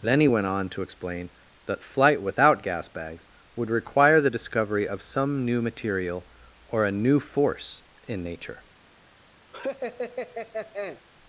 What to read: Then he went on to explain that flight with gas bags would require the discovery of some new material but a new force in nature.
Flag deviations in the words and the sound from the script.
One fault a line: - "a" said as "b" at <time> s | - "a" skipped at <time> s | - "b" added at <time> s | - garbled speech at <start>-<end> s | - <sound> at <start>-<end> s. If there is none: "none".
- "with" said as "without" at 2.2 s
- "but" said as "or" at 6.7 s
- laugh at 9.5-11.0 s